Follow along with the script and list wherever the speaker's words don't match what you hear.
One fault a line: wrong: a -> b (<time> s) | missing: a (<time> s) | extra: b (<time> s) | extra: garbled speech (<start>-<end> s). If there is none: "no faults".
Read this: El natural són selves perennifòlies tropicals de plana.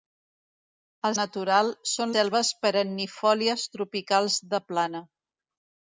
no faults